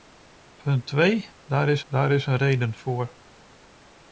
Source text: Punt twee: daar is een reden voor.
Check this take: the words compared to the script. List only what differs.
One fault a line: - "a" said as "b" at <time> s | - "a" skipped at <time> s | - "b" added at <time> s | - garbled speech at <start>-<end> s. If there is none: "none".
- "daar is" added at 1.9 s